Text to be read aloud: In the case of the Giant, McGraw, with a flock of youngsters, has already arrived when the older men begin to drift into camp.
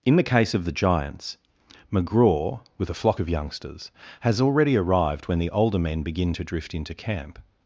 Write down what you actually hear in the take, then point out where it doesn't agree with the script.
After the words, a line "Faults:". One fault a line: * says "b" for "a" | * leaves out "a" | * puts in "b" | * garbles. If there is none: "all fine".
In the case of the Giants, McGraw, with a flock of youngsters, has already arrived when the older men begin to drift into camp.
Faults:
* says "Giants" for "Giant"